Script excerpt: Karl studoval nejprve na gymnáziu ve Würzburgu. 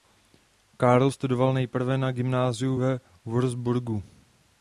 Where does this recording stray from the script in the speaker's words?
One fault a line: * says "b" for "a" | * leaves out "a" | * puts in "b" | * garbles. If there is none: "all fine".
all fine